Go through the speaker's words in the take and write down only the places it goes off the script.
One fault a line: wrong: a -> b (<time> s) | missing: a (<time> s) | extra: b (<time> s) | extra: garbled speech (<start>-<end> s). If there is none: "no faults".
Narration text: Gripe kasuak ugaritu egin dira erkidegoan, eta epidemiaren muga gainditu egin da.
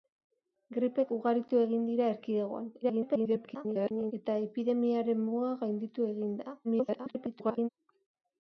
missing: kasuak (1.0 s)
extra: garbled speech (2.8-4.1 s)
extra: garbled speech (6.6-7.7 s)